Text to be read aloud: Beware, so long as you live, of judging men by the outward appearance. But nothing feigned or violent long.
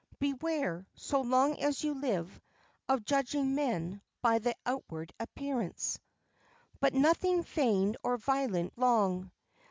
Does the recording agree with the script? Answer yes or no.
yes